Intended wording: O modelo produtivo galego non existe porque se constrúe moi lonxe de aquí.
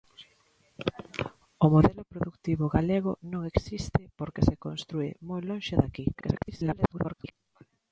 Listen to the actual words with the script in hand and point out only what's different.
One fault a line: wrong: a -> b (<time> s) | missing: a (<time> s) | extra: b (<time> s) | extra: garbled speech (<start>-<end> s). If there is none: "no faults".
extra: garbled speech (6.1-7.3 s)